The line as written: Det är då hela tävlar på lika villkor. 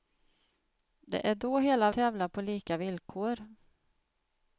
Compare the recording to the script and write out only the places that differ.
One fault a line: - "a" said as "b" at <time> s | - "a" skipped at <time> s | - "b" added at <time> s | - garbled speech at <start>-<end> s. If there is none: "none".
none